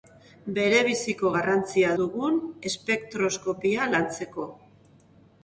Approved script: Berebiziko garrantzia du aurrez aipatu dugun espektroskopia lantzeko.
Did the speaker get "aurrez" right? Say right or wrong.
wrong